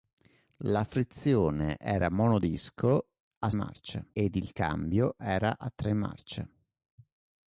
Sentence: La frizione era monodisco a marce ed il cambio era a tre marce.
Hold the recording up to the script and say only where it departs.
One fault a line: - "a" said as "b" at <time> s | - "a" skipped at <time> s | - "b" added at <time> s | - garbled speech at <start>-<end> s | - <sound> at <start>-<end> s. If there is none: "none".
none